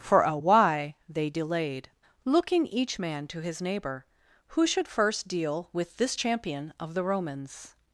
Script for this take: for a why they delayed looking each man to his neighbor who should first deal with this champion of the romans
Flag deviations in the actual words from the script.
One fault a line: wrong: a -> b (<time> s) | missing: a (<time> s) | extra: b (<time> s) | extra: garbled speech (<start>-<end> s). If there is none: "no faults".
no faults